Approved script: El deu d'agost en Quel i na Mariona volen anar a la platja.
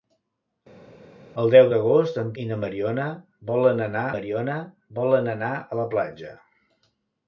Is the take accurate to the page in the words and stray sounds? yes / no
no